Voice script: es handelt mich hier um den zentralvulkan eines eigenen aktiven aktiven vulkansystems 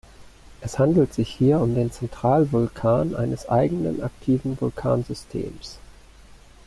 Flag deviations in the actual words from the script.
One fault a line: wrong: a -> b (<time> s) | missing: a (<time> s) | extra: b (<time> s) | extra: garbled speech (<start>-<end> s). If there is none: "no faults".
wrong: mich -> sich (1.1 s)
missing: aktiven (4.6 s)